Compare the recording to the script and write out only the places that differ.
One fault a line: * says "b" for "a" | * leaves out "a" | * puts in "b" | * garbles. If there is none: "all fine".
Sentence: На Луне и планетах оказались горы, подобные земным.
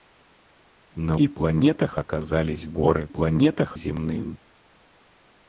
* leaves out "Луне"
* says "планетах" for "подобные"